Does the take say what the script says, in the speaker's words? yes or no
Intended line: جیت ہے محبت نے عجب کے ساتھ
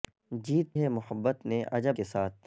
yes